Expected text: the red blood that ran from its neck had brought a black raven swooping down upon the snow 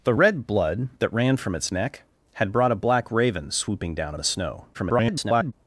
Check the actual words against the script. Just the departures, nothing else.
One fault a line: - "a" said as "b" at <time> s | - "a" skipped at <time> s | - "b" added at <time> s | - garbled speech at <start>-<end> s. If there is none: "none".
- "upon" skipped at 4.1 s
- garbled speech at 4.7-5.5 s